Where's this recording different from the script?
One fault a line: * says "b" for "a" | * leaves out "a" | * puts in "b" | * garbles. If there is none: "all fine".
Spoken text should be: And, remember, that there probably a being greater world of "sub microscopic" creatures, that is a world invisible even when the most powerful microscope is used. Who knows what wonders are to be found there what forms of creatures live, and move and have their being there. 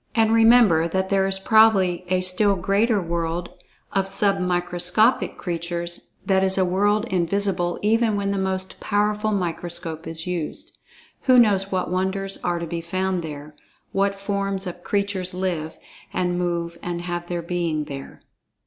* puts in "is"
* says "still" for "being"